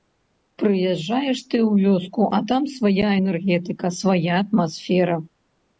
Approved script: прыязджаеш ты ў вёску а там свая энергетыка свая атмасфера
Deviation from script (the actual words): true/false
false